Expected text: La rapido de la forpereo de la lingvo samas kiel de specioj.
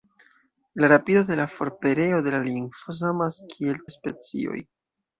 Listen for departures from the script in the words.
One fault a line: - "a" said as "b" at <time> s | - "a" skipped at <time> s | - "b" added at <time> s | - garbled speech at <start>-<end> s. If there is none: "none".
none